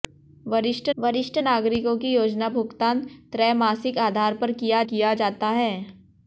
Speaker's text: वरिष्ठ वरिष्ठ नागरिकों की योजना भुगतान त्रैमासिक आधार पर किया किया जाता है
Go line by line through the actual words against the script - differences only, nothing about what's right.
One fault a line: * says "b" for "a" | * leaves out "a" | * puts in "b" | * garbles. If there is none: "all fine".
all fine